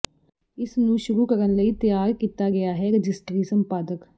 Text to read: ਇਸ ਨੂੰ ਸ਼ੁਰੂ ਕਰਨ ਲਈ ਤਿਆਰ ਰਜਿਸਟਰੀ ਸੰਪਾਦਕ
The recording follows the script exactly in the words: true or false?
false